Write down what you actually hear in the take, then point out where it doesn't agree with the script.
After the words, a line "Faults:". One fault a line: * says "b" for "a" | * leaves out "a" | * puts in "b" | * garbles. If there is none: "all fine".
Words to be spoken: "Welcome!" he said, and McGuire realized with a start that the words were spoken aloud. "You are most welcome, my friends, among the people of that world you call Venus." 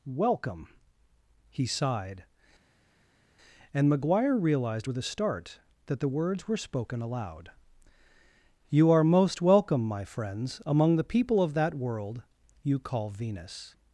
"Welcome!" he sighed, and McGuire realized with a start that the words were spoken aloud. "You are most welcome, my friends, among the people of that world you call Venus."
Faults:
* says "sighed" for "said"